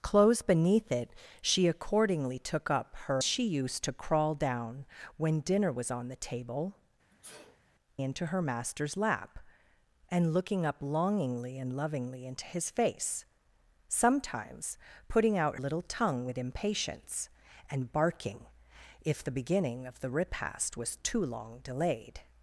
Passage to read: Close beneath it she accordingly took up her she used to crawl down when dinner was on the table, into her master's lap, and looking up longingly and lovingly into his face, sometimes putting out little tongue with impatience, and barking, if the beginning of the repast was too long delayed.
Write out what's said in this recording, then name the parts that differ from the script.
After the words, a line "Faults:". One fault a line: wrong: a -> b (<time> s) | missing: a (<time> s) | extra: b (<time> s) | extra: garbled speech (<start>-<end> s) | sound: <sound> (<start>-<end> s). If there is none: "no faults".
Close beneath it she accordingly took up her she used to crawl down when dinner was on the table, into her master's lap, and looking up longingly and lovingly into his face, sometimes putting out little tongue with impatience, and barking, if the beginning of the repast was too long delayed.
Faults:
sound: sneeze (7.1-7.6 s)